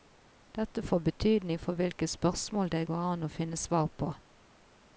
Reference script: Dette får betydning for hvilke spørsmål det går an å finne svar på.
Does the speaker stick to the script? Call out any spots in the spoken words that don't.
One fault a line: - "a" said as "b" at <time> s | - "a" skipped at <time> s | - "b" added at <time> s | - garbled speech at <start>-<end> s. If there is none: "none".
none